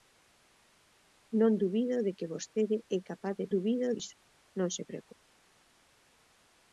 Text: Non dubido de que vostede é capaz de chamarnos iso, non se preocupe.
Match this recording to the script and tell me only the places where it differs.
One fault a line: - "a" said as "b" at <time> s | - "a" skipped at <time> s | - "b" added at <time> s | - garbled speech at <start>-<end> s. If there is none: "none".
- "chamarnos" said as "dubido" at 3.5 s